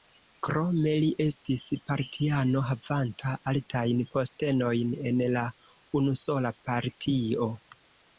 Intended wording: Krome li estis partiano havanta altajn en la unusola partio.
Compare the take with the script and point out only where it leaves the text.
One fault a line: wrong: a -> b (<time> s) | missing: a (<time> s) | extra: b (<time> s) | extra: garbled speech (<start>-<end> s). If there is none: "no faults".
extra: postenojn (4.1 s)